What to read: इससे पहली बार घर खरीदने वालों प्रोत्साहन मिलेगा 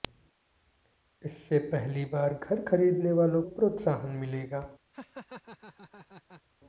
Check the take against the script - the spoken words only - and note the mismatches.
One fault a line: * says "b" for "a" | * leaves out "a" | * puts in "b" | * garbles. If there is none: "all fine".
all fine